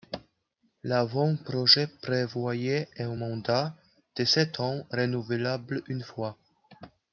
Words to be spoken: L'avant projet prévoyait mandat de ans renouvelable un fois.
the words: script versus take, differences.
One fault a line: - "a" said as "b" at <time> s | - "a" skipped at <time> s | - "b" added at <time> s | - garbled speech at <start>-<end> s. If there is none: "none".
- "un" added at 3.0 s
- "sept" added at 4.2 s
- "un" said as "une" at 5.9 s